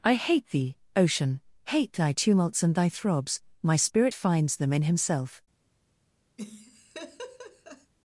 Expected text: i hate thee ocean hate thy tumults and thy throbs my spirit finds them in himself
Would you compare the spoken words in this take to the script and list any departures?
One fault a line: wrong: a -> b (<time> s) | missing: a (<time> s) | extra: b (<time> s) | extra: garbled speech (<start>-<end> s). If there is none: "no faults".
no faults